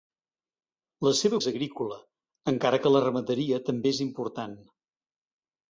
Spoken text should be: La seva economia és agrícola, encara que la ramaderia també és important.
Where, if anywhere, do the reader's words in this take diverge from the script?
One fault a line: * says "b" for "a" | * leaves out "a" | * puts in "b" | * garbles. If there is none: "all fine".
* leaves out "economia"